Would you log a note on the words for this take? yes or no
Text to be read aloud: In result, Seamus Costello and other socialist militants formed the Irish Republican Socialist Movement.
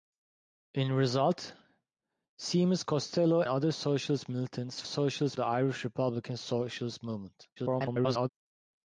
yes